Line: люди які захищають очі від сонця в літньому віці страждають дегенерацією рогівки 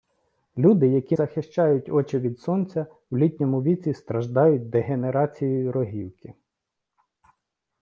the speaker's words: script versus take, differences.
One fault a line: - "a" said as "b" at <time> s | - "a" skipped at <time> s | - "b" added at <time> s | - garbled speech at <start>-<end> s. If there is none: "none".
none